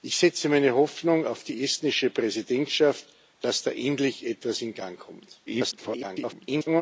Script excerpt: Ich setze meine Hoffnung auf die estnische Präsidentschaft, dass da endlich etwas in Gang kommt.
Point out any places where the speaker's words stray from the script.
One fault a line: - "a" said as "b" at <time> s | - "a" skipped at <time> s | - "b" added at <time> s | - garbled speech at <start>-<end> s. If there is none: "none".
- garbled speech at 5.5-6.8 s